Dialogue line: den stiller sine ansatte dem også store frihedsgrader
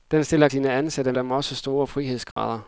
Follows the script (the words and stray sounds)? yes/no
no